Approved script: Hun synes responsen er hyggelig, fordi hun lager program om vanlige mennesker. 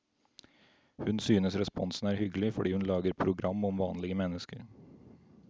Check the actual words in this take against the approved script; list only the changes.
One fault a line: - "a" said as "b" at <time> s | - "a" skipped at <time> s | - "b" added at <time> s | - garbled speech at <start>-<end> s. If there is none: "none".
none